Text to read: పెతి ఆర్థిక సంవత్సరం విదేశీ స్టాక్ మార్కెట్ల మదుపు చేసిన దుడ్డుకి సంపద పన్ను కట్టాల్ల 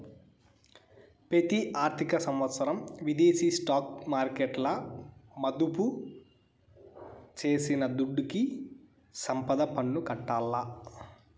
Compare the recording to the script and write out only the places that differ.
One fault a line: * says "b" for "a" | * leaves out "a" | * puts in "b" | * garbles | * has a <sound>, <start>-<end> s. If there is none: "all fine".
all fine